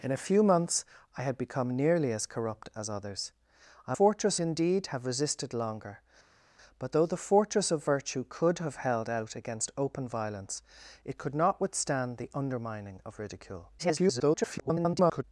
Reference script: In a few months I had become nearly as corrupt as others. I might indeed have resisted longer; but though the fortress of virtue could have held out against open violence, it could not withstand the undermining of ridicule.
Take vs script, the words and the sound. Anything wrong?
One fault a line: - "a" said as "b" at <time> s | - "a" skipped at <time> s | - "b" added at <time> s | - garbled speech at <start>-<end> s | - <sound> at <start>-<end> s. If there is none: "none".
- "might" said as "fortress" at 3.9 s
- garbled speech at 13.8-15.2 s